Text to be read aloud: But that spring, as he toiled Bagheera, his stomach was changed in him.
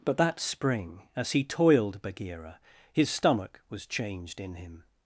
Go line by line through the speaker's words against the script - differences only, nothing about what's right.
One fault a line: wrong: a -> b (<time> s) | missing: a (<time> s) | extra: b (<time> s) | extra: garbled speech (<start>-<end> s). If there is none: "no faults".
no faults